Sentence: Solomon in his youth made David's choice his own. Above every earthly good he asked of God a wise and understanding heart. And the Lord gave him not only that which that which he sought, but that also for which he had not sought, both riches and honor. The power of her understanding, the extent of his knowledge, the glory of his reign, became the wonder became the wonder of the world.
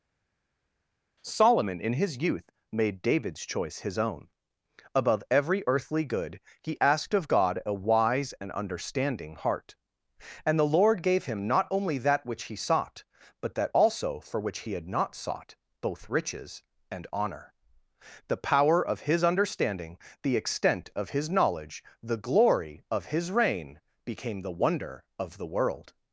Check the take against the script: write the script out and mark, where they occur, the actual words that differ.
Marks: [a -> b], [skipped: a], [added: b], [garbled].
Solomon in his youth made David's choice his own. Above every earthly good he asked of God a wise and understanding heart. And the Lord gave him not only that which [skipped: that which] he sought, but that also for which he had not sought, both riches and honor. The power of [her -> his] understanding, the extent of his knowledge, the glory of his reign, became the wonder [skipped: became the wonder] of the world.